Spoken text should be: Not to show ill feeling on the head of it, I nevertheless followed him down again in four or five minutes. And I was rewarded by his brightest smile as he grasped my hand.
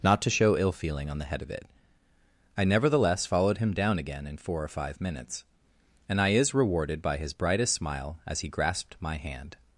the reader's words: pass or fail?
fail